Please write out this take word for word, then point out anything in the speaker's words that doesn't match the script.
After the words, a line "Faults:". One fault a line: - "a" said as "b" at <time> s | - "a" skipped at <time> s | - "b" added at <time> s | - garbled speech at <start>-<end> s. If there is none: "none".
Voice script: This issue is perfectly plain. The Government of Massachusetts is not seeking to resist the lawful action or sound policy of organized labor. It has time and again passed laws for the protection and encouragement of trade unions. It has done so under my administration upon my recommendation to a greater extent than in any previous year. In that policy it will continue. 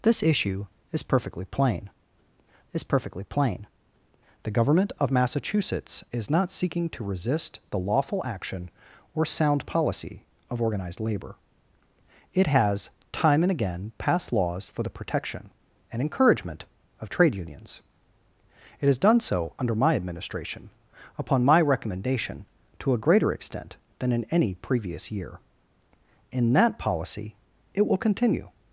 This issue is perfectly plain is perfectly plain. The Government of Massachusetts is not seeking to resist the lawful action or sound policy of organized labor. It has time and again passed laws for the protection and encouragement of trade unions. It has done so under my administration upon my recommendation to a greater extent than in any previous year. In that policy it will continue.
Faults:
- "is perfectly plain" added at 2.7 s